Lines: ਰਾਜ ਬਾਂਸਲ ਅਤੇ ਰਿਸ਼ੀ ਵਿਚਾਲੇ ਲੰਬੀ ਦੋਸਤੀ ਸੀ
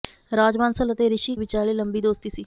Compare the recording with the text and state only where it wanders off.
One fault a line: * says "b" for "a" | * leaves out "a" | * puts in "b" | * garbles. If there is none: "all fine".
all fine